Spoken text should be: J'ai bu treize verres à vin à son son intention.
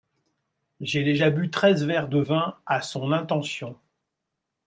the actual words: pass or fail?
fail